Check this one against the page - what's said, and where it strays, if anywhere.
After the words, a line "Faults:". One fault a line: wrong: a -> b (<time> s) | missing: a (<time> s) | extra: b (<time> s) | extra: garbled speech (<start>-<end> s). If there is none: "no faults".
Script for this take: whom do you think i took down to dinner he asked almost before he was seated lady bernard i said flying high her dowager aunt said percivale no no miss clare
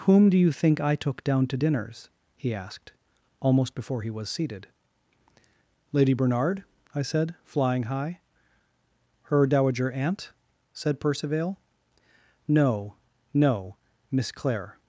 whom do you think i took down to dinners he asked almost before he was seated lady bernard i said flying high her dowager aunt said percivale no no miss clare
Faults:
wrong: dinner -> dinners (1.5 s)